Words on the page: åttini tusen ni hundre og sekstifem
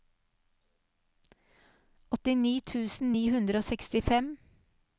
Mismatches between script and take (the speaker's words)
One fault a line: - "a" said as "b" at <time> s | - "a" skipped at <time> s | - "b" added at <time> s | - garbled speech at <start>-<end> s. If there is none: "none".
none